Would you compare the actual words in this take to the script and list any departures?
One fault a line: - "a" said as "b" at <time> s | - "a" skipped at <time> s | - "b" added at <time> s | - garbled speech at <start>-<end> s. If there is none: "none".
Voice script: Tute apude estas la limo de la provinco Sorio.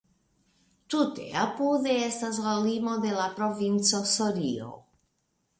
none